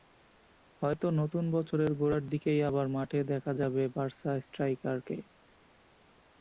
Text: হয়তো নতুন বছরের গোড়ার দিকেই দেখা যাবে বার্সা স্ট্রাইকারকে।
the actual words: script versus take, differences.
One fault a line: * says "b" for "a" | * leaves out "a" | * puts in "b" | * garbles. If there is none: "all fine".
* puts in "আবার মাঠে"